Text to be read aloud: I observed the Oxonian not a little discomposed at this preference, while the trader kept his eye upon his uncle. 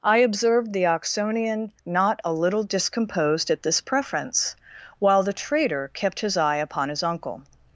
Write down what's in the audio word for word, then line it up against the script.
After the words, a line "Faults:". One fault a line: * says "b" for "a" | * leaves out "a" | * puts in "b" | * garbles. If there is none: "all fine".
I observed the Oxonian not a little discomposed at this preference, while the trader kept his eye upon his uncle.
Faults:
all fine